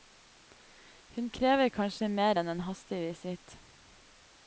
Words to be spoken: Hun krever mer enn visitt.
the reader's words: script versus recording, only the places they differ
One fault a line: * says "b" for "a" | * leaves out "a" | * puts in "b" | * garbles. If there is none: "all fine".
* puts in "kanskje"
* puts in "en hastig"